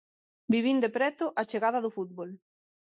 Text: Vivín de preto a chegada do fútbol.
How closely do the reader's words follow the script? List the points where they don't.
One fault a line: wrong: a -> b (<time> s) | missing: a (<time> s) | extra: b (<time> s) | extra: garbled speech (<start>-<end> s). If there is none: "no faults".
no faults